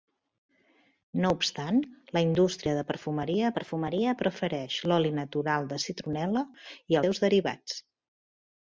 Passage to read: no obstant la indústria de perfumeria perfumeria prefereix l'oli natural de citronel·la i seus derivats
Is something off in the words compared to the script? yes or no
no